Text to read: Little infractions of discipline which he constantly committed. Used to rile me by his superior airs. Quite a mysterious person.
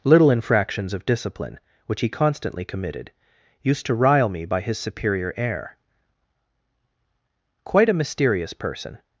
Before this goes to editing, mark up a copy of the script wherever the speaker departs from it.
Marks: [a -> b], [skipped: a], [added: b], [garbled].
Little infractions of discipline which he constantly committed. Used to rile me by his superior [airs. -> air] Quite a mysterious person.